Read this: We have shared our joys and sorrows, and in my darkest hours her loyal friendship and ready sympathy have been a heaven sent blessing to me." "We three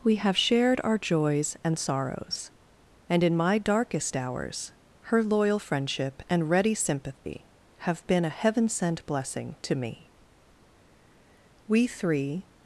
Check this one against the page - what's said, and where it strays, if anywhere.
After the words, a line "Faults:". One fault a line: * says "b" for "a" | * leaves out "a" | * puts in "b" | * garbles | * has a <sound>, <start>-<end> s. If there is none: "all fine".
We have shared our joys and sorrows, and in my darkest hours her loyal friendship and ready sympathy have been a heaven sent blessing to me." "We three
Faults:
* has a dropout, 7.2-7.3 s